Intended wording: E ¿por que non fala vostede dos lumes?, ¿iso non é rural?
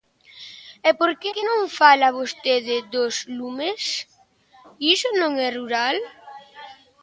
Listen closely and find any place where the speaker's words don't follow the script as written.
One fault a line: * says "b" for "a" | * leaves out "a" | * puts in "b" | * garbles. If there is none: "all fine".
* puts in "que"